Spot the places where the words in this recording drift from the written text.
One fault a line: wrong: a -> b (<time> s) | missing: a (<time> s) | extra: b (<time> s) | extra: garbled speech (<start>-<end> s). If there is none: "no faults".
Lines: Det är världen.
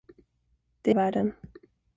no faults